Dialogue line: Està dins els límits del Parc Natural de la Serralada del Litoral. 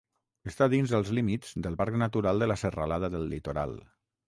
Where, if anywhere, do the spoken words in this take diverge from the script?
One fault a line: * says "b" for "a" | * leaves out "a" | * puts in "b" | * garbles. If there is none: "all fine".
all fine